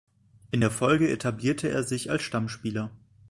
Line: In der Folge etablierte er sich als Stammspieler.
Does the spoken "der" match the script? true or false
true